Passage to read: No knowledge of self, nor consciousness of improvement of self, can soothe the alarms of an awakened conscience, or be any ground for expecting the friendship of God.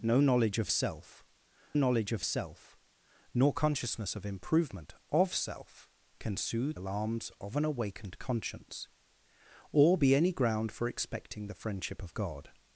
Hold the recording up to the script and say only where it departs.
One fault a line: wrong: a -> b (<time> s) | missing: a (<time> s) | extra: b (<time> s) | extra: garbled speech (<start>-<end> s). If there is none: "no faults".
extra: knowledge of self (1.7 s)
missing: the (6.8 s)